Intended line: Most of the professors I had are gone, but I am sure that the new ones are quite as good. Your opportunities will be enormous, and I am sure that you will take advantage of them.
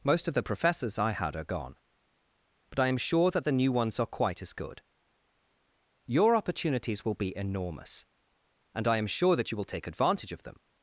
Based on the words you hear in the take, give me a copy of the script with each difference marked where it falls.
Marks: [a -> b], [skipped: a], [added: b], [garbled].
Most of the professors I had are gone, but I am sure that the new ones are quite as good. Your opportunities will be enormous, and I am sure that you will take advantage of them.